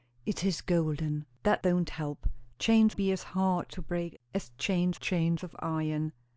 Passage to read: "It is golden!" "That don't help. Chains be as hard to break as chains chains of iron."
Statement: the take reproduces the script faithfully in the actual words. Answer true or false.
true